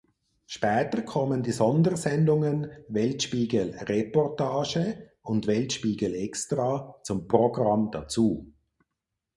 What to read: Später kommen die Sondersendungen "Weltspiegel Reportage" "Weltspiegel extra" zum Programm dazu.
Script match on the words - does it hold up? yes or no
no